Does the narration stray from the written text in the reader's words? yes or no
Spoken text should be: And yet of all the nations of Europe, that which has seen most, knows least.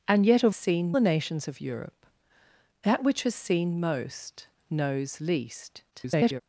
yes